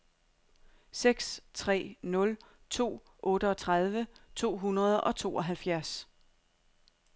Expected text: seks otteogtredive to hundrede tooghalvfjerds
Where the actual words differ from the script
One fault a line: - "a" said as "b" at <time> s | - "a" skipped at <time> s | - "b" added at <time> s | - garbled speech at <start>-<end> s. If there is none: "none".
- "tre nul to" added at 1.5 s
- "og" added at 5.0 s